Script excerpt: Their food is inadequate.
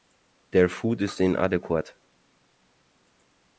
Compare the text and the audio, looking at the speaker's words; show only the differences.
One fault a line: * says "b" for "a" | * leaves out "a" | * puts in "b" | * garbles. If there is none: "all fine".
all fine